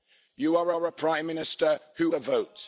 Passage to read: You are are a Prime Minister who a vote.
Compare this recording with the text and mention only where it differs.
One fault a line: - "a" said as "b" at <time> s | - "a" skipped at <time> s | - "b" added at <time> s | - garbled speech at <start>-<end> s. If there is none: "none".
none